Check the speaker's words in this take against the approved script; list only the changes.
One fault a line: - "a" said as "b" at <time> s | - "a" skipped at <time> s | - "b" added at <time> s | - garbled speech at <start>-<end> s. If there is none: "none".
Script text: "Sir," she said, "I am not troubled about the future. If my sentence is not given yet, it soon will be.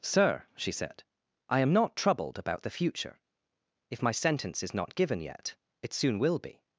none